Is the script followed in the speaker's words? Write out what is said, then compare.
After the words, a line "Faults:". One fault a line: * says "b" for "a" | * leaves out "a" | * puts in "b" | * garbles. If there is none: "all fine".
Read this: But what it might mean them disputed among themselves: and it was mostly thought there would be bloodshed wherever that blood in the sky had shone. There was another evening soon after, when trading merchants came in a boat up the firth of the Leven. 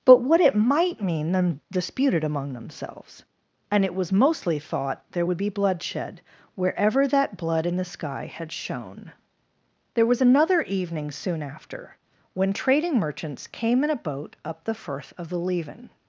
But what it might mean them disputed among themselves: and it was mostly thought there would be bloodshed wherever that blood in the sky had shone. There was another evening soon after, when trading merchants came in a boat up the firth of the Leven.
Faults:
all fine